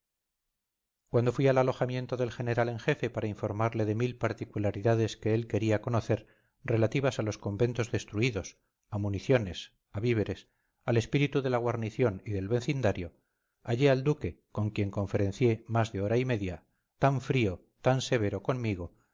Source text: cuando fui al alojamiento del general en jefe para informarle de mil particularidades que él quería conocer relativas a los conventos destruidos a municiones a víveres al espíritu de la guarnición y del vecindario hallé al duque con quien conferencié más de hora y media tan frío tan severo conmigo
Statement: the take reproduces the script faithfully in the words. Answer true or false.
true